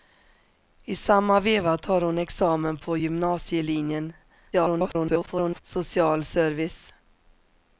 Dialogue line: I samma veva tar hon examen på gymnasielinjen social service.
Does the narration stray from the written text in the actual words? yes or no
yes